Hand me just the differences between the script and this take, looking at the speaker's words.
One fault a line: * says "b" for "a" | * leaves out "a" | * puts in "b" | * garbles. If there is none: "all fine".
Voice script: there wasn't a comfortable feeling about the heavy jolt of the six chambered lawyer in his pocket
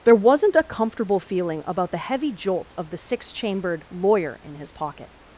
all fine